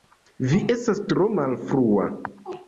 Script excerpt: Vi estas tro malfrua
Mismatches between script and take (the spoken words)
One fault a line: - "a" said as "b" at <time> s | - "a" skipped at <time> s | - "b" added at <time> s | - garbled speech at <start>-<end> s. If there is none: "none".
none